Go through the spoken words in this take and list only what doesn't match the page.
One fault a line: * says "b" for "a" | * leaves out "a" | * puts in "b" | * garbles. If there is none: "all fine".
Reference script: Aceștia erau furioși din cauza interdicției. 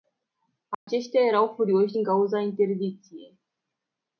all fine